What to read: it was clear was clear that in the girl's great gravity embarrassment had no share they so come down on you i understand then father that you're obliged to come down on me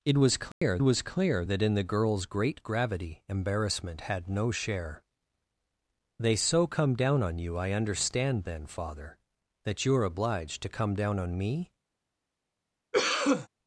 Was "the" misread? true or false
false